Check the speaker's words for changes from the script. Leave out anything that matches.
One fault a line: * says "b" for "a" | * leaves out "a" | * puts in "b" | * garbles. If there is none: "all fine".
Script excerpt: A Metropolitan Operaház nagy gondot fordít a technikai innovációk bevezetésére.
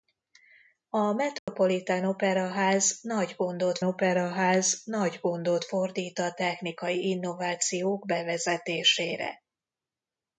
* puts in "Operaház nagy gondot"